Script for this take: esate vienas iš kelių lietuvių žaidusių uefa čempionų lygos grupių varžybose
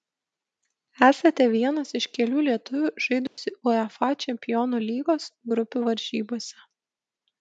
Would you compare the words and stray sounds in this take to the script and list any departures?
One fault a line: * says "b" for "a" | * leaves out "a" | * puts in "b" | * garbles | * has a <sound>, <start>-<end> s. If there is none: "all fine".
* has a dropout, 3.3-3.4 s